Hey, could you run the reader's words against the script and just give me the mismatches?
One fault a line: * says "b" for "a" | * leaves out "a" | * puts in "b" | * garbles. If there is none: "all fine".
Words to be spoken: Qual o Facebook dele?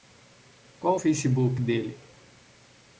all fine